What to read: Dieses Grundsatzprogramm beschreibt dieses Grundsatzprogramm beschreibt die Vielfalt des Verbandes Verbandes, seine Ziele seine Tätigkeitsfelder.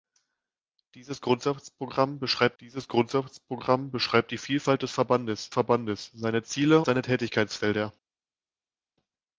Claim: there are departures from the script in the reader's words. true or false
false